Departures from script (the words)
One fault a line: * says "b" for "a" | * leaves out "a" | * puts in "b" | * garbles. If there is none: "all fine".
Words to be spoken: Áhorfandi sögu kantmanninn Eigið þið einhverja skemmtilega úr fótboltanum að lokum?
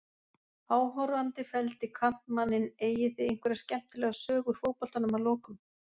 * says "felldi" for "sögu"
* puts in "sögu"